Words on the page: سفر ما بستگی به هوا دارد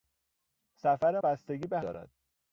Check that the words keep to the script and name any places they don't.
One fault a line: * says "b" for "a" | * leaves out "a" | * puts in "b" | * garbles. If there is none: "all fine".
* leaves out "ما"
* leaves out "هوا"